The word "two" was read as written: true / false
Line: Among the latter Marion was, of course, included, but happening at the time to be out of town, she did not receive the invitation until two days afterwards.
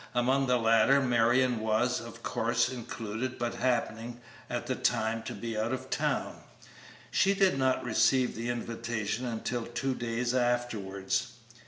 true